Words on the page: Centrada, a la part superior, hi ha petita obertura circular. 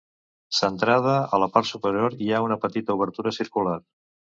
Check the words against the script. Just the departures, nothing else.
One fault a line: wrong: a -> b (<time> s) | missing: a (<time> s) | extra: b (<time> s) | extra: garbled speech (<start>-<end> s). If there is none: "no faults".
extra: una (2.5 s)